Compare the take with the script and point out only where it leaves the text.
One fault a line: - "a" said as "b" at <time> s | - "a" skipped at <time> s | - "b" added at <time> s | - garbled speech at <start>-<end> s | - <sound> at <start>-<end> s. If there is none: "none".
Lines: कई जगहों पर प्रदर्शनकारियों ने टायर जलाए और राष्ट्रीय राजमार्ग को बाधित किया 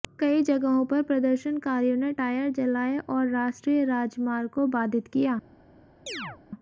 - chirp at 6.1-6.4 s